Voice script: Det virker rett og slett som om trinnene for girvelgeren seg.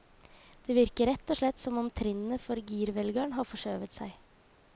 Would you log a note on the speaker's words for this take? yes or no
yes